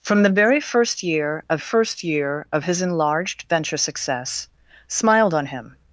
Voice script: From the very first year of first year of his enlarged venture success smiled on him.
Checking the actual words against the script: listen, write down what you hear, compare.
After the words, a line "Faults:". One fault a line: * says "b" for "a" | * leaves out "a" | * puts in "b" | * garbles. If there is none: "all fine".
From the very first year of first year of his enlarged venture success smiled on him.
Faults:
all fine